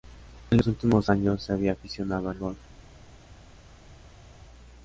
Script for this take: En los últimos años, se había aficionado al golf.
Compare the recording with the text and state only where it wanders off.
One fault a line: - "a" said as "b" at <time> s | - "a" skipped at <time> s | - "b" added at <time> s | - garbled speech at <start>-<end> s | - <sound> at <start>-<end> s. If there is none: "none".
none